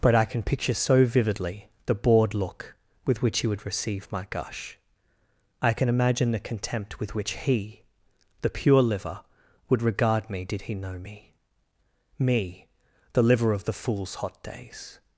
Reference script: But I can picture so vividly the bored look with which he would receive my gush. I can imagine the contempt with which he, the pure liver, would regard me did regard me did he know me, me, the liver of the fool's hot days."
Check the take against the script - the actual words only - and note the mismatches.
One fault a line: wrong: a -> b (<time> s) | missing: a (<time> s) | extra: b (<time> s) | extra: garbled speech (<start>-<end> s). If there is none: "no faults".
missing: regard me did (10.6 s)